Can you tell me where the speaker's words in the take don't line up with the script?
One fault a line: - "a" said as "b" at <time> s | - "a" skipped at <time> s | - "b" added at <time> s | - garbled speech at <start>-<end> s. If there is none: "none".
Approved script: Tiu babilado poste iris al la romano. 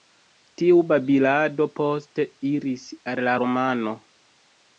none